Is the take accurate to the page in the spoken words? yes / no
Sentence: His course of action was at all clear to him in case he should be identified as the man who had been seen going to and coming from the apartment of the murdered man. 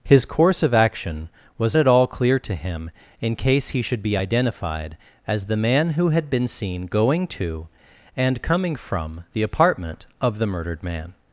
yes